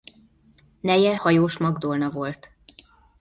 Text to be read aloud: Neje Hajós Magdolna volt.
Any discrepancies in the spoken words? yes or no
no